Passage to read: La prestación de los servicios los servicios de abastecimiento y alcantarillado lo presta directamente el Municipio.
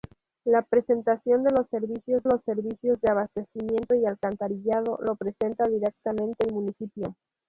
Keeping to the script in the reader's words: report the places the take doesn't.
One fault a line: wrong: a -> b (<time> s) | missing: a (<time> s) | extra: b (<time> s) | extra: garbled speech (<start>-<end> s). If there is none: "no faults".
no faults